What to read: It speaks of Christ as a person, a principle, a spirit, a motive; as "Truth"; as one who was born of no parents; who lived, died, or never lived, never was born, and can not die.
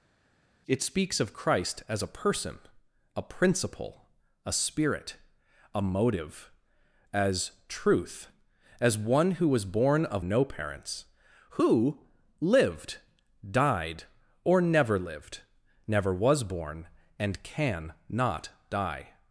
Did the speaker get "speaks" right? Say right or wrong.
right